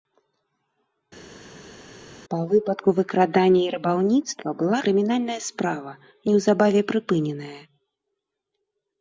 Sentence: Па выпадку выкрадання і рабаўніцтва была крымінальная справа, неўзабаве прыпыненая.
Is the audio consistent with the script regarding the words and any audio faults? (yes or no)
yes